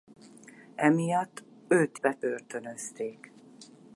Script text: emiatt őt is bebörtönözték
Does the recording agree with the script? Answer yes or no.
no